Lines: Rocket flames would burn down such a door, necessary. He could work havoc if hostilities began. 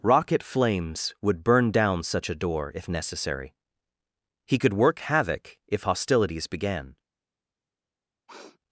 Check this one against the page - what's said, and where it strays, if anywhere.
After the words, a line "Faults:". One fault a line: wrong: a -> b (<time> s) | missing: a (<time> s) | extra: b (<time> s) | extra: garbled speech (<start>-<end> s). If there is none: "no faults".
Rocket flames would burn down such a door, if necessary. He could work havoc if hostilities began.
Faults:
extra: if (2.7 s)